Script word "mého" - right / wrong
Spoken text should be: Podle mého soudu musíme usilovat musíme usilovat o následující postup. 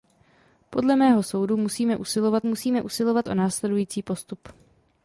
right